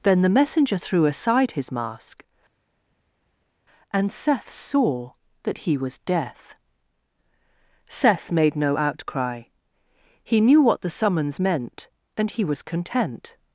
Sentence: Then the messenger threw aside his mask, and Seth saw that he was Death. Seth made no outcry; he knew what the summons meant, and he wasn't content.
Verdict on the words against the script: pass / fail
fail